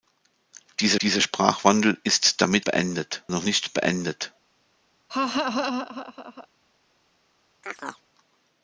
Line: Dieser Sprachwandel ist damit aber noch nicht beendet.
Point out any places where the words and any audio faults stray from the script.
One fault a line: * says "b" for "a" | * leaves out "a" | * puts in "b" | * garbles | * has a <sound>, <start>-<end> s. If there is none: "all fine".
* puts in "dieser"
* says "beendet" for "aber"
* has a laugh, 5.1-6.5 s
* has a chirp, 7.6-8.1 s